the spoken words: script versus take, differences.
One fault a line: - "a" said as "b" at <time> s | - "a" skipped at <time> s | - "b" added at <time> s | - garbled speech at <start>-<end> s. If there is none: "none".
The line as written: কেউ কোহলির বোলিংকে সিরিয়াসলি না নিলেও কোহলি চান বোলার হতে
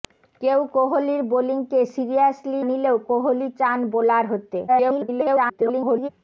- "না" skipped at 2.6 s
- garbled speech at 4.7-6.1 s